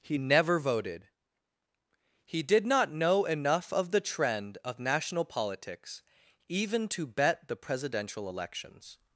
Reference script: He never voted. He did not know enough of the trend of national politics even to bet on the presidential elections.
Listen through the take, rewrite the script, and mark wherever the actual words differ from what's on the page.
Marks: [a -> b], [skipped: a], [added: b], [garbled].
He never voted. He did not know enough of the trend of national politics even to bet [skipped: on] the presidential elections.